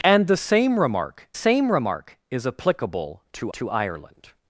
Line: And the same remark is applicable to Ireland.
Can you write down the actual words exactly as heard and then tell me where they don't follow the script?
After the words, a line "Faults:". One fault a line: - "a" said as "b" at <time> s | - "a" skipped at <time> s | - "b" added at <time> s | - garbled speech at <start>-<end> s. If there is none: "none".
And the same remark same remark is applicable to to Ireland.
Faults:
- "same remark" added at 1.3 s
- "to" added at 3.5 s